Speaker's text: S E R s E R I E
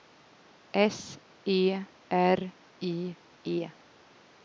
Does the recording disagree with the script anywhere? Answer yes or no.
yes